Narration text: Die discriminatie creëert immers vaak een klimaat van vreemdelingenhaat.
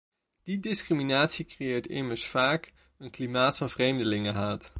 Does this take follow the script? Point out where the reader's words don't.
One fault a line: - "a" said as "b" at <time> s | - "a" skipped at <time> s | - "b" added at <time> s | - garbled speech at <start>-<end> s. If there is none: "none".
none